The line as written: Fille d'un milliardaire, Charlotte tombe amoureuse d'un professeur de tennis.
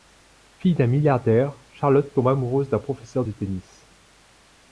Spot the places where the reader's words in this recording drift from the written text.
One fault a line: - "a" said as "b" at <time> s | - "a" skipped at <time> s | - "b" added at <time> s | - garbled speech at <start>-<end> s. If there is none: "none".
none